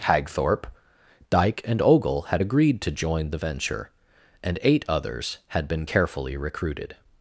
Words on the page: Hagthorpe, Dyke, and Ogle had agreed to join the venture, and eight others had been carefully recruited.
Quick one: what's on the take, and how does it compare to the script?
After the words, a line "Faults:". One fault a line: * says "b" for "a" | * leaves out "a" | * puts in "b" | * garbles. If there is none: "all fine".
Hagthorpe, Dyke, and Ogle had agreed to join the venture, and eight others had been carefully recruited.
Faults:
all fine